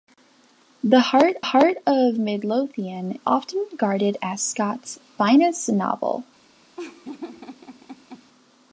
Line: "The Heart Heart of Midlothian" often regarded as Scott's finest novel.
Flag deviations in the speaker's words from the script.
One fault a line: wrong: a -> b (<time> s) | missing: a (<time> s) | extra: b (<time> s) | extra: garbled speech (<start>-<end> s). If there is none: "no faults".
no faults